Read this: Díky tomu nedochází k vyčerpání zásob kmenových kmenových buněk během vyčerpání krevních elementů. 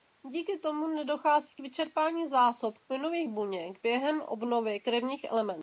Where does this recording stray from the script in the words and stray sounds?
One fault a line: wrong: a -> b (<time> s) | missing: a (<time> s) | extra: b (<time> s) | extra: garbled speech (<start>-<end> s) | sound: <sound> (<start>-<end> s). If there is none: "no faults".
missing: kmenových (3.3 s)
wrong: vyčerpání -> obnovy (4.2 s)